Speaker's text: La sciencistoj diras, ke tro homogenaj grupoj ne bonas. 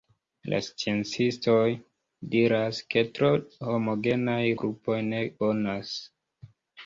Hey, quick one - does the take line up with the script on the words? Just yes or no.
yes